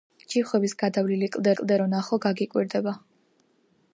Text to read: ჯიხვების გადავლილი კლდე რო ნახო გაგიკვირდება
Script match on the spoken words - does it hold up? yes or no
no